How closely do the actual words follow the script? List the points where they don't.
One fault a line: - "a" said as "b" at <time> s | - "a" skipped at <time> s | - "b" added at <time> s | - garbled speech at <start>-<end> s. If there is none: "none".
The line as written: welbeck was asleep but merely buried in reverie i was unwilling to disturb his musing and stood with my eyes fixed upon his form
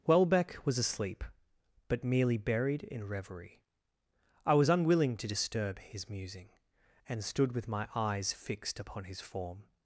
none